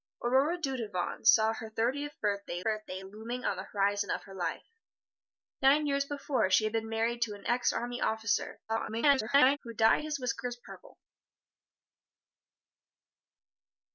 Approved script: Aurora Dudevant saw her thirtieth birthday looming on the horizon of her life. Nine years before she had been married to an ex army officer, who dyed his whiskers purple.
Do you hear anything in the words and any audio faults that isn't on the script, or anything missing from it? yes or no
yes